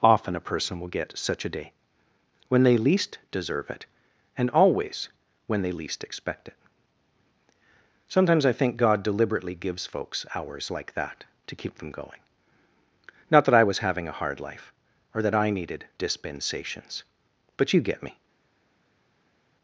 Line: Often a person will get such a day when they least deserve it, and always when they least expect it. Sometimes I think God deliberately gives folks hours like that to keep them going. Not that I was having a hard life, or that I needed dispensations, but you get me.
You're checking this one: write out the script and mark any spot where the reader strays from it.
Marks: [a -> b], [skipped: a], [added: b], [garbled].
Often a person will get such a day when they least deserve it, and always when they least expect it. Sometimes I think God deliberately gives folks hours like that to keep them going. Not that I was having a hard life, or that I needed dispensations, but you get me.